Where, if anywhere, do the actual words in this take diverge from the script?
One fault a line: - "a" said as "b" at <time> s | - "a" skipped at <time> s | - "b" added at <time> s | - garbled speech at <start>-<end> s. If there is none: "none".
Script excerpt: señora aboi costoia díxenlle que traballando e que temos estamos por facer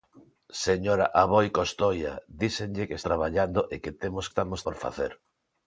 none